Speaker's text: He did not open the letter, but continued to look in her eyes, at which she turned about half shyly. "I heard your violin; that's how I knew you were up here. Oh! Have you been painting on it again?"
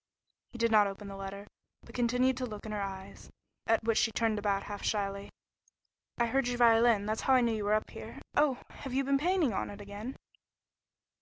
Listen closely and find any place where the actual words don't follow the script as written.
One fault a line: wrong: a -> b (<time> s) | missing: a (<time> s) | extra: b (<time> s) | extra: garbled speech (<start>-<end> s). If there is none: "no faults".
no faults